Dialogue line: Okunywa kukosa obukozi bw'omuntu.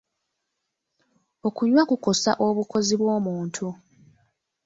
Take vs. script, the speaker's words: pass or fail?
pass